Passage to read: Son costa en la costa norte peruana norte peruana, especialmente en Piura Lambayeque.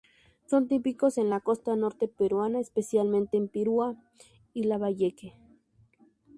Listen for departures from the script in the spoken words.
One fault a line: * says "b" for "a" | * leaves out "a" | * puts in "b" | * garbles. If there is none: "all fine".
* says "típicos" for "costa"
* leaves out "norte peruana"
* puts in "y"